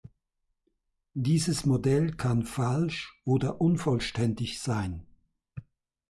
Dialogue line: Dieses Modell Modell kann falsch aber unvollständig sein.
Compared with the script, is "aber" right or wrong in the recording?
wrong